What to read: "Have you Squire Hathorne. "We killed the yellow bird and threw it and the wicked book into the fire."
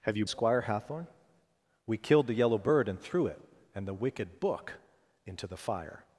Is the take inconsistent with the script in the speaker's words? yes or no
no